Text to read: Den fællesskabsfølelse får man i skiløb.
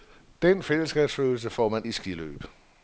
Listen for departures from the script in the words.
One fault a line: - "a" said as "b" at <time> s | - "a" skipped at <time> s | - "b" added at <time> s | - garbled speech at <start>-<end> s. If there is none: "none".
none